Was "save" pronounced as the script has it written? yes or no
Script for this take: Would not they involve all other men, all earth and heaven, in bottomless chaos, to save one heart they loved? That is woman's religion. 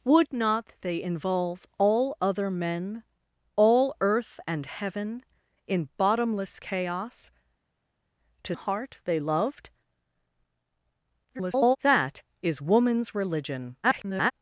no